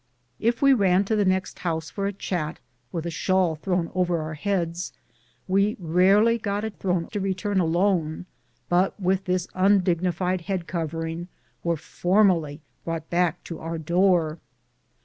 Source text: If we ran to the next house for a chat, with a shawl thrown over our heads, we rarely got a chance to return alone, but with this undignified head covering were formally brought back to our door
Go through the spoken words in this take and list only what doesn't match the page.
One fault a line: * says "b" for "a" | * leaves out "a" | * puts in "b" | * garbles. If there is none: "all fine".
* says "thrown" for "chance"